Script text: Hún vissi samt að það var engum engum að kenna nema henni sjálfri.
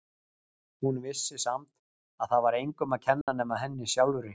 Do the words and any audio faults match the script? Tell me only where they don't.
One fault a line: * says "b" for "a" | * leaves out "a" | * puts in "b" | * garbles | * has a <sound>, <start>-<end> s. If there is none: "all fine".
* leaves out "engum"
* has a dropout, 3.2-3.3 s